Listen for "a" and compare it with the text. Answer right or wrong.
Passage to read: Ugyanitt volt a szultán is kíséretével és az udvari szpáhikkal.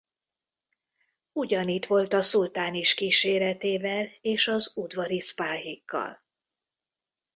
right